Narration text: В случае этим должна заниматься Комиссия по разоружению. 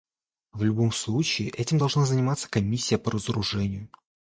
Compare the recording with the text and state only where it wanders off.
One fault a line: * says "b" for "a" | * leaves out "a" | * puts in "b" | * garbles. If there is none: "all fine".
* puts in "любом"